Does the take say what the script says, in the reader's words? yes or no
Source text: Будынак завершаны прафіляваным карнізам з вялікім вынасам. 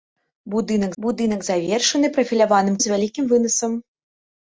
no